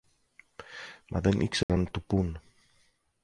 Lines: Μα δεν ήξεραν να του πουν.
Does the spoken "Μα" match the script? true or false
true